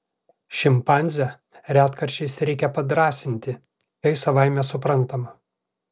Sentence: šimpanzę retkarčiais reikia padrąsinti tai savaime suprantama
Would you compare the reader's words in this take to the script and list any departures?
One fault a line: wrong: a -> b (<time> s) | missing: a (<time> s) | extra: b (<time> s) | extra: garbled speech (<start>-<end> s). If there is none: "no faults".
no faults